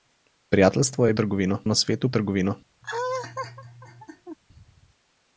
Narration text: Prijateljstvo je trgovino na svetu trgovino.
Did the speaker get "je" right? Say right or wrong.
right